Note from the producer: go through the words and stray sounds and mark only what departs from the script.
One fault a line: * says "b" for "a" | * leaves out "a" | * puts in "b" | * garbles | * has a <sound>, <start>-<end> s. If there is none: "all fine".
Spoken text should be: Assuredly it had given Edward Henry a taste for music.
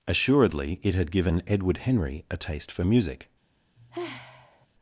* has a sigh, 3.8-4.7 s